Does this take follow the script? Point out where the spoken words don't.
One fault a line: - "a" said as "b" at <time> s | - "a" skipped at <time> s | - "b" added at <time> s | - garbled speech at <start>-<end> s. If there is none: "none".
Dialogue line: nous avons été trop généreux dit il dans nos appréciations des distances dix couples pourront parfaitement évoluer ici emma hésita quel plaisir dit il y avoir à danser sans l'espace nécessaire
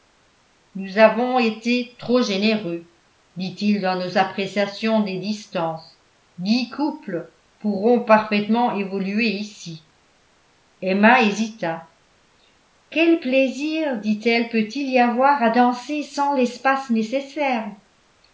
- "elle peut" added at 14.2 s